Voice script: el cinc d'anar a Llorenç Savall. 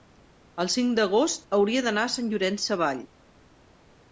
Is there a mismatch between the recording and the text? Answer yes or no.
yes